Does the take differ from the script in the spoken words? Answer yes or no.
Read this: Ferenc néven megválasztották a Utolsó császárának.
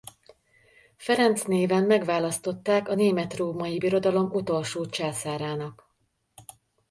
yes